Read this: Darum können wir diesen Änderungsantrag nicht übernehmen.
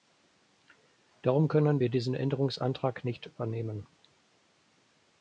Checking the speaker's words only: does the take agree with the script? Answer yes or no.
yes